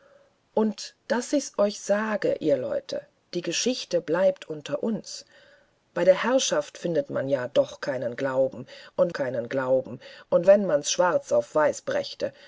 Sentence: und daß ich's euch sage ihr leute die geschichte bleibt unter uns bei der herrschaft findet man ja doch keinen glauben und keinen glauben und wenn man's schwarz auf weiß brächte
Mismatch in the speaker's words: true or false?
false